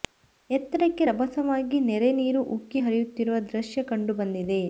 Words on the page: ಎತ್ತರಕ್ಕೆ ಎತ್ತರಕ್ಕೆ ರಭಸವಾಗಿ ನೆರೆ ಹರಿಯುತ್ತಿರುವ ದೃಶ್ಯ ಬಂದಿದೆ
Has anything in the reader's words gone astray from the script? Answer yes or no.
yes